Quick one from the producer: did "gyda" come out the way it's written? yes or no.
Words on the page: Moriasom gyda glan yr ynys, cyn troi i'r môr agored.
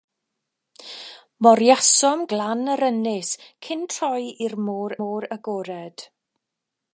no